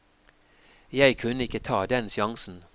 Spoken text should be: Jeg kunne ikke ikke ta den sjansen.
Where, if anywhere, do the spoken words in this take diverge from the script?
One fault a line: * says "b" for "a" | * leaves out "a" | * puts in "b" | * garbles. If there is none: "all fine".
* leaves out "ikke"